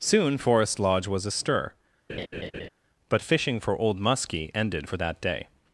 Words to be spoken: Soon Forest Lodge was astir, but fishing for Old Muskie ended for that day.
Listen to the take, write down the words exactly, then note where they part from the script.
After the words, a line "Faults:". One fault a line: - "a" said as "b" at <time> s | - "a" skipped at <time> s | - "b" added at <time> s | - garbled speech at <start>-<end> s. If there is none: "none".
Soon Forest Lodge was astir, but fishing for Old Muskie ended for that day.
Faults:
none